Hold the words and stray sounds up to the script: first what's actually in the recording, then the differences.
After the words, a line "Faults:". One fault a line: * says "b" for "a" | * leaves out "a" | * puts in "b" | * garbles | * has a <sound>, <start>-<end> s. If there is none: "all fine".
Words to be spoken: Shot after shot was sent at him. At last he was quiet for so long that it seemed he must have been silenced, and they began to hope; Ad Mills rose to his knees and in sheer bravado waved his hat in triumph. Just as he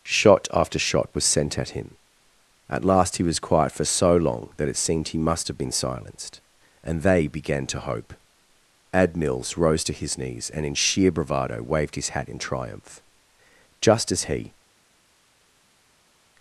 Shot after shot was sent at him. At last he was quiet for so long that it seemed he must have been silenced, and they began to hope; Ad Mills rose to his knees and in sheer bravado waved his hat in triumph. Just as he
Faults:
all fine